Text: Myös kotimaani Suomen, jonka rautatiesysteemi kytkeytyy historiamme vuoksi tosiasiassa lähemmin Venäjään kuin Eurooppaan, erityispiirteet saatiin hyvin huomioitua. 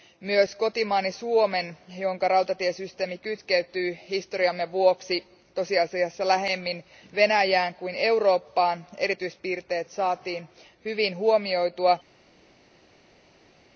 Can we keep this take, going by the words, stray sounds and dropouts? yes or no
yes